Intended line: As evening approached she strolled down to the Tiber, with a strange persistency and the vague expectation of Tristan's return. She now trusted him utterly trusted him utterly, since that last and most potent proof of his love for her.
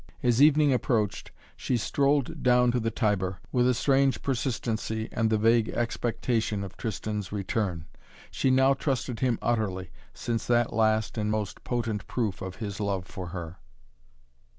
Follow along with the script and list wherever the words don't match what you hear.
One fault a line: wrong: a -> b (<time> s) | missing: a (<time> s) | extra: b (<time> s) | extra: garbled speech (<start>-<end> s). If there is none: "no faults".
missing: trusted him utterly (9.9 s)